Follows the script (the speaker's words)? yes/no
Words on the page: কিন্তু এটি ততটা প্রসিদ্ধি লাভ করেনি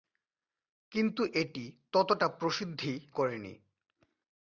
no